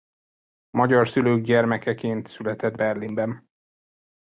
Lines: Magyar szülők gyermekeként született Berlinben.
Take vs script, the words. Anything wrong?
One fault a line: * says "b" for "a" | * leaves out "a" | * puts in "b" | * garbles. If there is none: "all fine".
all fine